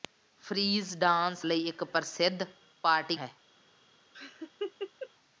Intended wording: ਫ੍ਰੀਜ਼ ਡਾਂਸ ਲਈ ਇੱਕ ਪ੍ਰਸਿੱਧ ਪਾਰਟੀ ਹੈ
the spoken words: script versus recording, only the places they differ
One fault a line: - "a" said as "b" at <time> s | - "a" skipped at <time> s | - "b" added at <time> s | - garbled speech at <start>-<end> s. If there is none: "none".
none